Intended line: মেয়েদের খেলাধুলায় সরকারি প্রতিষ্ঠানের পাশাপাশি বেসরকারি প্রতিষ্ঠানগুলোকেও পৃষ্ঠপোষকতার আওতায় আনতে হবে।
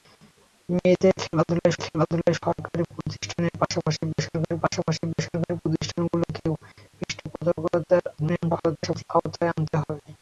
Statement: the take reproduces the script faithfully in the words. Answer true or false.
false